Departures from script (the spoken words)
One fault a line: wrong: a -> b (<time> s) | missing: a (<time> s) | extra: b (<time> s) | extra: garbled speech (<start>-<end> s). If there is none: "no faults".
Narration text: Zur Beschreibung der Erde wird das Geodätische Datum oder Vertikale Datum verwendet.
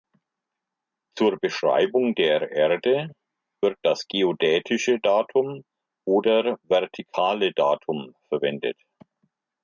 no faults